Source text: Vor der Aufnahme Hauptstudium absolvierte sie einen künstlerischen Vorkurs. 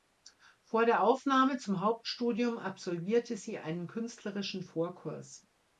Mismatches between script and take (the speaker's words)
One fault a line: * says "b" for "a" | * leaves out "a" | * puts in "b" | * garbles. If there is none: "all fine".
* puts in "zum"